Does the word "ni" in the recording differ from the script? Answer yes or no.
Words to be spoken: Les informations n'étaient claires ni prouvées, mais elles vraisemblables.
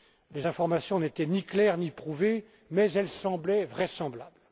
no